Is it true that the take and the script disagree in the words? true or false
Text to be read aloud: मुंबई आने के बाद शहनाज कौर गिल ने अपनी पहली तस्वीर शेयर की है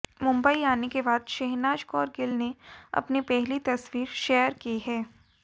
false